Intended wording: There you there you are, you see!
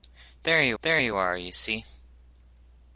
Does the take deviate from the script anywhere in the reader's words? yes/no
no